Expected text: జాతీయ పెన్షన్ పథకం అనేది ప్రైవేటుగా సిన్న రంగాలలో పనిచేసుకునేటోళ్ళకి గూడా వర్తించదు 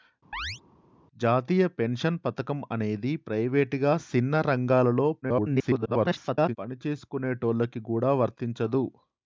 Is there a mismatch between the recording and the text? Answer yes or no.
yes